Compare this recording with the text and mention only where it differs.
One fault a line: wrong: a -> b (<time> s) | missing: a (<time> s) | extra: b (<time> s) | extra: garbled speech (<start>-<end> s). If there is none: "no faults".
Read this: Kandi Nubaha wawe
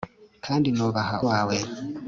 no faults